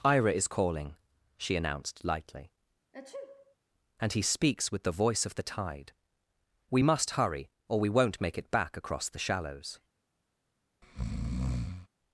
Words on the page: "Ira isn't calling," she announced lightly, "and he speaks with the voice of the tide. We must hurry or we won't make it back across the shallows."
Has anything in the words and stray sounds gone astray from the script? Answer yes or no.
yes